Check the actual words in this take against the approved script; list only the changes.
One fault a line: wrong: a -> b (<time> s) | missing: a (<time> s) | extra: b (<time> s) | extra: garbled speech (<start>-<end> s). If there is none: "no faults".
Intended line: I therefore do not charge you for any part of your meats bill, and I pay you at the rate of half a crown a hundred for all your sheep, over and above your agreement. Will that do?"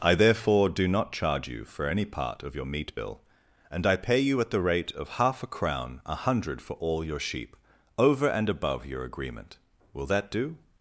wrong: meats -> meat (2.6 s)